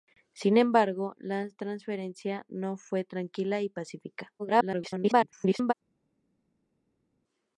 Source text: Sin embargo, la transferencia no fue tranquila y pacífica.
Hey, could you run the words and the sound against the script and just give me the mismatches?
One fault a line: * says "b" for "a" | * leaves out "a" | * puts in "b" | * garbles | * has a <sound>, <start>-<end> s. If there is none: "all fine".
* garbles